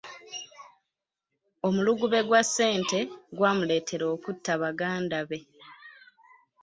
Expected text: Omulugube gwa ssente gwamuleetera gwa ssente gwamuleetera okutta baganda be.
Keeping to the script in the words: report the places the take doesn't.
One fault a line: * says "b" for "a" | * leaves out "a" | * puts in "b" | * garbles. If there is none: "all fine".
* leaves out "gwa ssente gwamuleetera"